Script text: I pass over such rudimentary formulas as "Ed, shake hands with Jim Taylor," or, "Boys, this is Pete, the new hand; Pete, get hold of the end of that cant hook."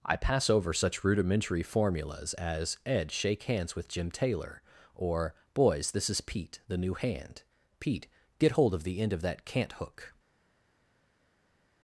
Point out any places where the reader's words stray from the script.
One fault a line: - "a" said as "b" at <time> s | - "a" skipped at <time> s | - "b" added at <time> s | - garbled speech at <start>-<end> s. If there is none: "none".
none